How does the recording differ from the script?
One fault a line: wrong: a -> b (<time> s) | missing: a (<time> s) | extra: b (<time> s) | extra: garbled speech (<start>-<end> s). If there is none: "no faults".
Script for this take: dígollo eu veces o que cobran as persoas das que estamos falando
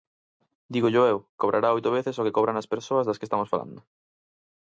extra: cobrará oito (1.4 s)